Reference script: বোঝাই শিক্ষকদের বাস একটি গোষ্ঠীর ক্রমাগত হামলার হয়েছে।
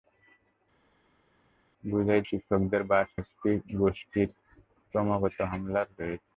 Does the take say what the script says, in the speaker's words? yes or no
yes